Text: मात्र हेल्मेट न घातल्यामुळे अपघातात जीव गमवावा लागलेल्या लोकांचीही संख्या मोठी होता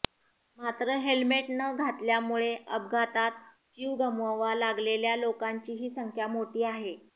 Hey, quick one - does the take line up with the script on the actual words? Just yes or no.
no